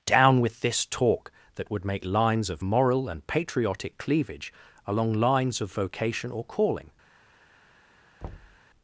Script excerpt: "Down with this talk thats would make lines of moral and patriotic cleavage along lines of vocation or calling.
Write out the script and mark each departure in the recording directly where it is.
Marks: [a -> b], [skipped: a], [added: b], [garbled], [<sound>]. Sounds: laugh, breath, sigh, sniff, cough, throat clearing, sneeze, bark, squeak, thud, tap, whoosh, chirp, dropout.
"Down with this talk [thats -> that] would make lines of moral and patriotic cleavage along lines of vocation or calling. [thud]